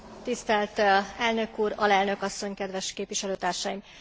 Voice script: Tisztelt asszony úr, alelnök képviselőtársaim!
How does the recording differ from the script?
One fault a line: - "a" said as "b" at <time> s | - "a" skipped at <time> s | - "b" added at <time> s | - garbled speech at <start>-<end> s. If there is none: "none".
- "asszony" said as "elnök" at 1.2 s
- "asszony kedves" added at 2.2 s